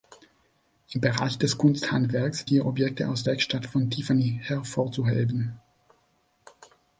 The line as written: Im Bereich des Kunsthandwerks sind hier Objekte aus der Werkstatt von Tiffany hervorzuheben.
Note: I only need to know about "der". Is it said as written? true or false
false